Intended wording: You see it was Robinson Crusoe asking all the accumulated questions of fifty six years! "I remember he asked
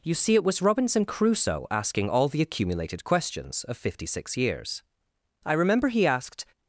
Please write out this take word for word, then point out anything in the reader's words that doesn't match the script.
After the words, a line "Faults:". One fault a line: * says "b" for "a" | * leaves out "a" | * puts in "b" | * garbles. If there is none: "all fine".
You see it was Robinson Crusoe asking all the accumulated questions of fifty six years! "I remember he asked
Faults:
all fine